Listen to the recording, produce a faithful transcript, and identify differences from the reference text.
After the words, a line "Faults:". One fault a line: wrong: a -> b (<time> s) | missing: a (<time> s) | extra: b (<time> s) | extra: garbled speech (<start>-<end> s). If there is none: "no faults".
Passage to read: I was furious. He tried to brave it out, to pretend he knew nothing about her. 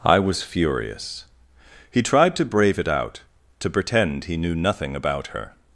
I was furious. He tried to brave it out, to pretend he knew nothing about her.
Faults:
no faults